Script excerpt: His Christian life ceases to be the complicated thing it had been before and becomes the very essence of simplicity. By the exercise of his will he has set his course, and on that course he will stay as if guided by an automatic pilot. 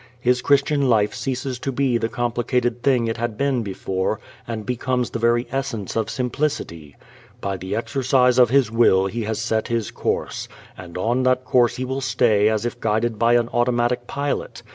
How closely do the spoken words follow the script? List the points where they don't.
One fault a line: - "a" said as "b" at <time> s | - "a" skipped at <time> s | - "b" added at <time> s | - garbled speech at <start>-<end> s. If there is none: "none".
none